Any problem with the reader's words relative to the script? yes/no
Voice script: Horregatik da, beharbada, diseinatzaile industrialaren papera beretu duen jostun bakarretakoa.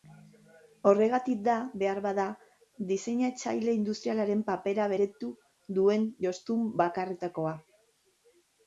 no